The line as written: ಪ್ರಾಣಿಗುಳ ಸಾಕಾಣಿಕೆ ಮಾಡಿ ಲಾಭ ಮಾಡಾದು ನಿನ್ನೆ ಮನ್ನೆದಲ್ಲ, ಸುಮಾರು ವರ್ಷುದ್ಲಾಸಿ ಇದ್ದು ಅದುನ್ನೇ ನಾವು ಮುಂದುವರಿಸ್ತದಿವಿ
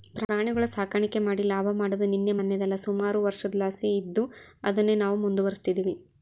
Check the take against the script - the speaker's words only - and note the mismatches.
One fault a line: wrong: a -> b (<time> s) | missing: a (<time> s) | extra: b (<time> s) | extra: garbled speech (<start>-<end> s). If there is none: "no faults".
no faults